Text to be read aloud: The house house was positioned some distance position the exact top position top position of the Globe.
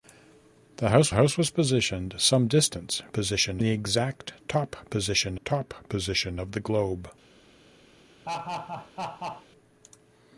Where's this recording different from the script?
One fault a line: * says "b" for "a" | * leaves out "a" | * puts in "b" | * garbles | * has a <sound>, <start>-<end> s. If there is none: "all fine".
* has a laugh, 8.2-9.5 s